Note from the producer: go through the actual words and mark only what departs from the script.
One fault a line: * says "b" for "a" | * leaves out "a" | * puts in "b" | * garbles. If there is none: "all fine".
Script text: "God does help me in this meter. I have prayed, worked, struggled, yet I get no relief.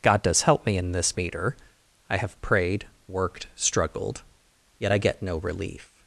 all fine